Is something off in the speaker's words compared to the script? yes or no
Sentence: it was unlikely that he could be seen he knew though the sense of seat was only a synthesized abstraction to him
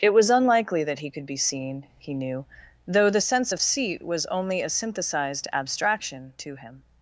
no